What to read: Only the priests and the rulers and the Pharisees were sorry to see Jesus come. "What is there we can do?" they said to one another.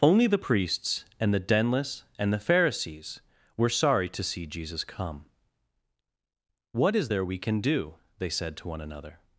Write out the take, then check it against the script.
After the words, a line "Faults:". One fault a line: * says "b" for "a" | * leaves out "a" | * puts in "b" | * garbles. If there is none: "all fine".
Only the priests and the denless and the Pharisees were sorry to see Jesus come. "What is there we can do?" they said to one another.
Faults:
* says "denless" for "rulers"